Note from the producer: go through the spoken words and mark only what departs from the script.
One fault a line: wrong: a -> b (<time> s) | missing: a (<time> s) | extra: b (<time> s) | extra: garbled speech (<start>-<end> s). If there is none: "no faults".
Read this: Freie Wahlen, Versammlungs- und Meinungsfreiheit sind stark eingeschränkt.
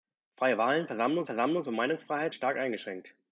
extra: Versammlungs (1.2 s)
missing: sind (2.3 s)